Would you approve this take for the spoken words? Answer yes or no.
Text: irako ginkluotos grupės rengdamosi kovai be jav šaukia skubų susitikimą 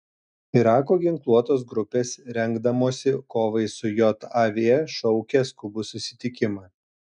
no